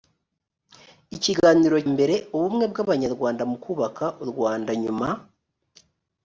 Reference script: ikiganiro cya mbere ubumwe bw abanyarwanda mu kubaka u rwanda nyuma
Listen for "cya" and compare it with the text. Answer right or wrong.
wrong